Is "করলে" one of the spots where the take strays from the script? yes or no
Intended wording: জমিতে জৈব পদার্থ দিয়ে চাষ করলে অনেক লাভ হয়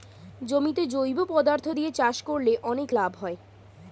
no